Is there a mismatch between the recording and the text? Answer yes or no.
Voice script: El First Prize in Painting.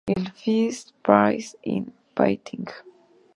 no